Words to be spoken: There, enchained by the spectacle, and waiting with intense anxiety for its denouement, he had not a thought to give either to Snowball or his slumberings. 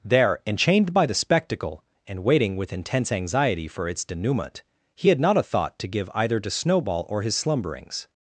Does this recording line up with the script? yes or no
yes